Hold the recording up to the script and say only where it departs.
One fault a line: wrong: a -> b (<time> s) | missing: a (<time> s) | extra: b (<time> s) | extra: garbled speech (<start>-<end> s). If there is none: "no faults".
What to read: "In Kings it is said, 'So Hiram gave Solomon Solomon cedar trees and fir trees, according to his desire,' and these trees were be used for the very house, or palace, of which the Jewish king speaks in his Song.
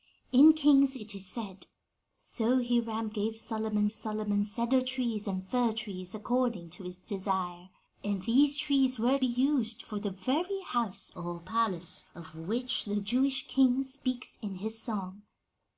no faults